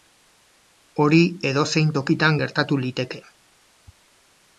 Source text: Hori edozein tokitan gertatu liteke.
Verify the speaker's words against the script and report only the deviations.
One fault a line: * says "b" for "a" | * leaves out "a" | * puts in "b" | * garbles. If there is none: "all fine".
all fine